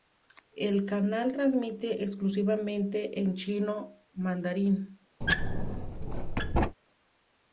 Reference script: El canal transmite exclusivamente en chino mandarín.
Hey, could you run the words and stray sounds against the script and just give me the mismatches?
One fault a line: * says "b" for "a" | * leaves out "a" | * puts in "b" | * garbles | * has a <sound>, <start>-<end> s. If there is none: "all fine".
* has a squeak, 5.2-6.8 s